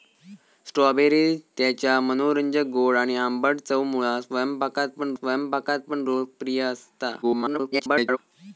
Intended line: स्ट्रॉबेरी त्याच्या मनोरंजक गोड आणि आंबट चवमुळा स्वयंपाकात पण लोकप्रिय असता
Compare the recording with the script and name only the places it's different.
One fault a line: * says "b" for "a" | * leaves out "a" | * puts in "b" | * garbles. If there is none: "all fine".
* puts in "स्वयंपाकात पण"
* garbles